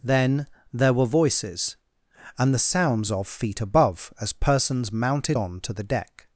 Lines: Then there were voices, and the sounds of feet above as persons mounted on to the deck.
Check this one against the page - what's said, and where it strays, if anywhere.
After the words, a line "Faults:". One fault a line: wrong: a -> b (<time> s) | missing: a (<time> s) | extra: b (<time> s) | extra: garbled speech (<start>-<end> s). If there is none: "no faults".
Then there were voices, and the sounds of feet above as persons mounted on to the deck.
Faults:
no faults